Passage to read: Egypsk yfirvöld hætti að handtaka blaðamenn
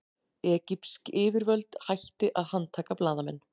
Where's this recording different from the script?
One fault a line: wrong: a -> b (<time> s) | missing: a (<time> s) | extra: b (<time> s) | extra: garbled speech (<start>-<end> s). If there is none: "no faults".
no faults